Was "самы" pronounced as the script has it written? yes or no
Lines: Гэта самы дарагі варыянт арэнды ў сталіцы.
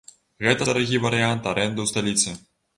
no